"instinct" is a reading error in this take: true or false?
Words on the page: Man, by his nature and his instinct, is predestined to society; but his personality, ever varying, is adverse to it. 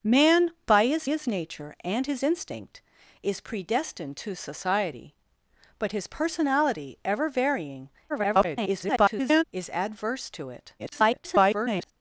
false